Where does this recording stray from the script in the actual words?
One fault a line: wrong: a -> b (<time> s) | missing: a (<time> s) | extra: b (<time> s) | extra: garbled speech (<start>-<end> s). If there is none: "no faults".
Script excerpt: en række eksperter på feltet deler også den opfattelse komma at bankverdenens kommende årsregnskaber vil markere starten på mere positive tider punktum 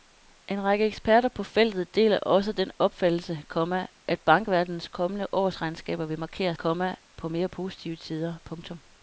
wrong: starten -> komma (6.6 s)